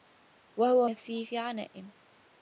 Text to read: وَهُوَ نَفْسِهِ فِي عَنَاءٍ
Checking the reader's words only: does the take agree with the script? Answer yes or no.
yes